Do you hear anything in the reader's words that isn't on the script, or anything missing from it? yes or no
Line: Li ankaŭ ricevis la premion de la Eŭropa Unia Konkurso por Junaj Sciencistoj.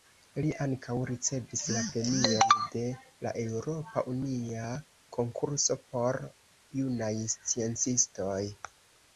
no